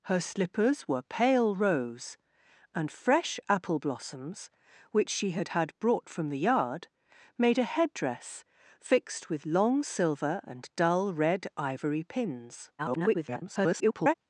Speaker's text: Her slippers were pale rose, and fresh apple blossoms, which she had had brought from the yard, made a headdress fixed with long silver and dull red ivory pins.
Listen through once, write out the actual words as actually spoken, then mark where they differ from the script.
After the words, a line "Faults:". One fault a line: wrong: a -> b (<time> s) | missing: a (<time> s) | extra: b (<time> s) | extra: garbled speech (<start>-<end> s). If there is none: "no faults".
Her slippers were pale rose, and fresh apple blossoms, which she had had brought from the yard, made a headdress fixed with long silver and dull red ivory pins. [garbled]
Faults:
extra: garbled speech (12.8-14.1 s)